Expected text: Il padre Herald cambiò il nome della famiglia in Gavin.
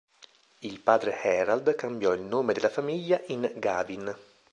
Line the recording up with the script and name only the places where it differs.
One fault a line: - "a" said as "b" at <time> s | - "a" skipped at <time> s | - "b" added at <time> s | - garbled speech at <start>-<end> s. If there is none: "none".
none